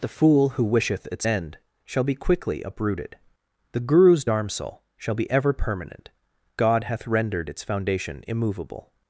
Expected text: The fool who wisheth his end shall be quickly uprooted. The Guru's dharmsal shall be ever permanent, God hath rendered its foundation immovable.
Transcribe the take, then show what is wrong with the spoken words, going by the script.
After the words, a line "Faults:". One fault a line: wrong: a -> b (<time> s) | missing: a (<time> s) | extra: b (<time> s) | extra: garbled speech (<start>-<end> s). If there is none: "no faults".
The fool who wisheth its end shall be quickly uprooted. The Guru's dharmsal shall be ever permanent, God hath rendered its foundation immovable.
Faults:
wrong: his -> its (1.1 s)